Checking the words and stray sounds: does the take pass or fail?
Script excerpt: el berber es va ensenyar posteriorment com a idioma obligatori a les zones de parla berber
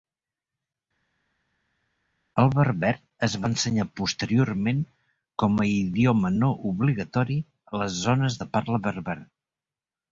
fail